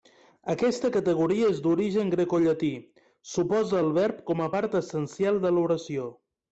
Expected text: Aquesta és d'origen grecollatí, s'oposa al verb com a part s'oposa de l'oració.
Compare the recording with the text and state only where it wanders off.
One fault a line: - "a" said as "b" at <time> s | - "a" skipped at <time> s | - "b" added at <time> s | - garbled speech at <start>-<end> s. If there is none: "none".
- "categoria" added at 0.9 s
- "s'oposa" said as "essencial" at 4.9 s